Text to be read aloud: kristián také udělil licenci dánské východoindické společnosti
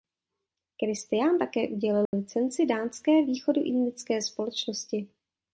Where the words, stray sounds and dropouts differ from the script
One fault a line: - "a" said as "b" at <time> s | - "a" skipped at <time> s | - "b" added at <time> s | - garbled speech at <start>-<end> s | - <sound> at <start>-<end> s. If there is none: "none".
- dropout at 2.1-2.1 s